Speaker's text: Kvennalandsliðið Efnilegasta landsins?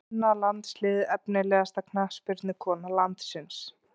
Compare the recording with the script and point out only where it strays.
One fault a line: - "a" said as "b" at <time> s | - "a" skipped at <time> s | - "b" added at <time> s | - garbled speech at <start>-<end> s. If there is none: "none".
- "knattspyrnukona" added at 1.9 s